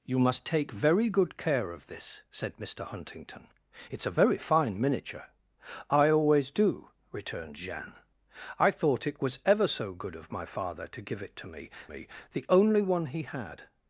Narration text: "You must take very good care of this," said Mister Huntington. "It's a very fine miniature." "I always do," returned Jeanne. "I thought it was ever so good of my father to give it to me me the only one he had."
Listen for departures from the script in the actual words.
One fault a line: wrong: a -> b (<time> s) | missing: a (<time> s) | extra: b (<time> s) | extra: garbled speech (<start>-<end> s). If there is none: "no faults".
no faults